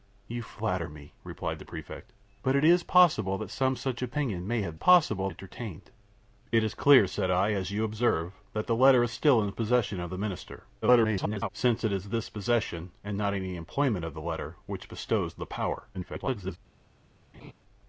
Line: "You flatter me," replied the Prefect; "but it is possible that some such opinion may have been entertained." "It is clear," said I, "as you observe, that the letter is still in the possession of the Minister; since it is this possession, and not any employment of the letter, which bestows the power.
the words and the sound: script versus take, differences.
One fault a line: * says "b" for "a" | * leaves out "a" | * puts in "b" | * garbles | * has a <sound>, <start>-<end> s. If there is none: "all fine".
* says "possible" for "been"
* garbles
* garbles
* has a laugh, 17.3-17.5 s